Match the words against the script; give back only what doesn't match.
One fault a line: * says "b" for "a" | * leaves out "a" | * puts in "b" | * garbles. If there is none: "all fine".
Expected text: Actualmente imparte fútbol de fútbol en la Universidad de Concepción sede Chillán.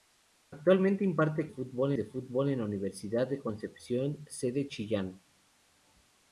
all fine